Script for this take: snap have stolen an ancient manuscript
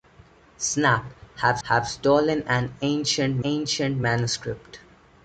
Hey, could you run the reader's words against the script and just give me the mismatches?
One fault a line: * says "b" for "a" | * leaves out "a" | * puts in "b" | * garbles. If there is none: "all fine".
* puts in "have"
* puts in "ancient"